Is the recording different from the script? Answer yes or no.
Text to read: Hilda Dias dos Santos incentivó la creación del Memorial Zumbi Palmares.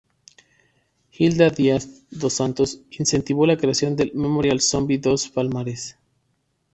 yes